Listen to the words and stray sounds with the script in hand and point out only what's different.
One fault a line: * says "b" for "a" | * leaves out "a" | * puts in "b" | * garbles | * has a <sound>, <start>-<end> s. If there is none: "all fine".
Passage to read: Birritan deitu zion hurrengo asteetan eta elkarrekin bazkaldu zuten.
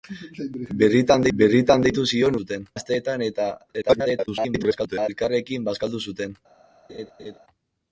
* puts in "birritan"
* says "zuten" for "hurrengo"
* garbles
* has a laugh, 6.9-7.4 s